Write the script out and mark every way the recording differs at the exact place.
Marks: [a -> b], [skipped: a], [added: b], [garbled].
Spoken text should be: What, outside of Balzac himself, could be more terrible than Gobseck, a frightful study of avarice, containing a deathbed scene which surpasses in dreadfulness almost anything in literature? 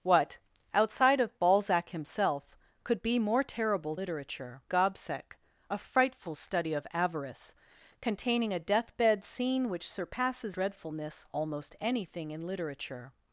What, outside of Balzac himself, could be more terrible [than -> literature] Gobseck, a frightful study of avarice, containing a deathbed scene which surpasses [skipped: in] dreadfulness almost anything in literature?